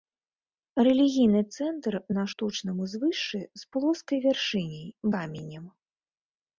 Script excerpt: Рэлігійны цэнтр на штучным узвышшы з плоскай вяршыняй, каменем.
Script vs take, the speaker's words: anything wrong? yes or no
no